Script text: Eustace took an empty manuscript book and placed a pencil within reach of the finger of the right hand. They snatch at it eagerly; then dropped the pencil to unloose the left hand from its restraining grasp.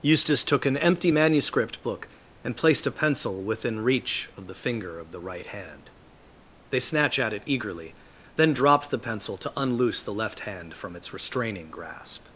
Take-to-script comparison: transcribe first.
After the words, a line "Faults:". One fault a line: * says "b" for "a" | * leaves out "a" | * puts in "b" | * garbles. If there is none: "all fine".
Eustace took an empty manuscript book and placed a pencil within reach of the finger of the right hand. They snatch at it eagerly; then dropped the pencil to unloose the left hand from its restraining grasp.
Faults:
all fine